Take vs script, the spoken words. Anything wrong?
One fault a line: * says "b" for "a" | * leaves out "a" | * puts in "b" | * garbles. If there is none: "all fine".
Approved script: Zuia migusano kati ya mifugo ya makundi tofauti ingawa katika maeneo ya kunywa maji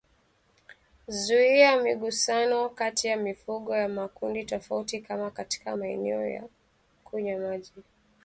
* says "kama" for "ingawa"